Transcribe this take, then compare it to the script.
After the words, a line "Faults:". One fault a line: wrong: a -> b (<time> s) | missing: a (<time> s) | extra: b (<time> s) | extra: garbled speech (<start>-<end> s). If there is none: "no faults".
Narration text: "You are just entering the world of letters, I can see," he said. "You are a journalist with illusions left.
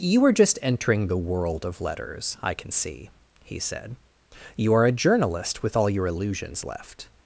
"You are just entering the world of letters, I can see," he said. "You are a journalist with all your illusions left.
Faults:
extra: all your (5.8 s)